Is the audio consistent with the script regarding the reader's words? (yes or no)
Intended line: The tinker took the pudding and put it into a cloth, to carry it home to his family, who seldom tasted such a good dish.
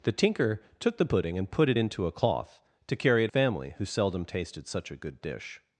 no